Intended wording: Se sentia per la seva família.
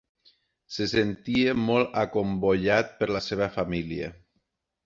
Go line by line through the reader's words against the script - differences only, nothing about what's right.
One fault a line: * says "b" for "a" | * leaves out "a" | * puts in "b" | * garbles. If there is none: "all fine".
* puts in "molt acomboiat"